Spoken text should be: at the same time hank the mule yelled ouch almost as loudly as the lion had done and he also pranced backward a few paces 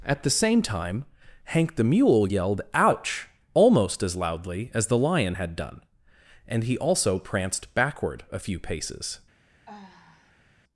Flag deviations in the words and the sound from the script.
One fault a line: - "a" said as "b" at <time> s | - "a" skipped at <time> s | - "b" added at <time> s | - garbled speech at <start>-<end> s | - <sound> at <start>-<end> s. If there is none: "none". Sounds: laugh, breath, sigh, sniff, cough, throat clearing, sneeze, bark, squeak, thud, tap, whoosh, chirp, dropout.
- sigh at 9.7-10.5 s